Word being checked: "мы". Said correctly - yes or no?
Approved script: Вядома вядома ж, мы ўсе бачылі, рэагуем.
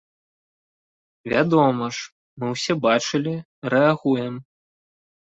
yes